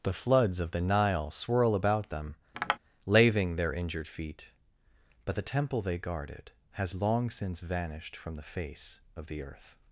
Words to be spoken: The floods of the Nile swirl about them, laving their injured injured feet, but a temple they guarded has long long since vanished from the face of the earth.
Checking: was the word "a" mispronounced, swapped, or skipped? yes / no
yes